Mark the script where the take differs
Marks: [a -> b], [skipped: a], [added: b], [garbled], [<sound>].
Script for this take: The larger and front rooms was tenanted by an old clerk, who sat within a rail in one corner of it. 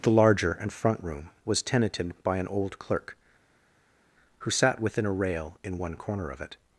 The larger and front [rooms -> room] was tenanted by an old clerk, who sat within a rail in one corner of it.